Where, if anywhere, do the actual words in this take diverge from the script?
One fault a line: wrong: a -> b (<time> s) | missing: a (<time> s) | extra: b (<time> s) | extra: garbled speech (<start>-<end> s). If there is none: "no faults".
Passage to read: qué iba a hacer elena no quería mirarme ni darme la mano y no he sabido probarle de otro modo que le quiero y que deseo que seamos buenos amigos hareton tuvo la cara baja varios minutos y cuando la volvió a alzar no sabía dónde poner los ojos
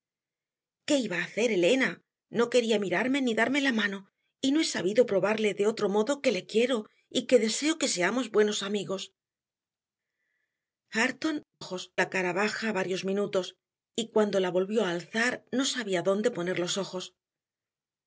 wrong: tuvo -> ojos (11.6 s)